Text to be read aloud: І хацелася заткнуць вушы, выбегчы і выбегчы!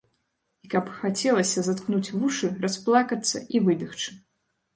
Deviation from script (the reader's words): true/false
true